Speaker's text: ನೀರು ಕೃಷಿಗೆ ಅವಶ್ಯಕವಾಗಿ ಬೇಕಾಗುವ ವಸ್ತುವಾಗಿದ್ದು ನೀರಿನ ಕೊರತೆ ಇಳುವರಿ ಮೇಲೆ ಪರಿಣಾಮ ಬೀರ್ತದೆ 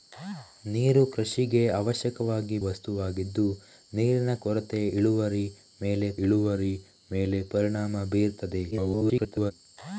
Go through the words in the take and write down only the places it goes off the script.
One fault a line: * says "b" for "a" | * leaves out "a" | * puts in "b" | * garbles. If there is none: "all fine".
* leaves out "ಬೇಕಾಗುವ"
* puts in "ಇಳುವರಿ ಮೇಲೆ"
* garbles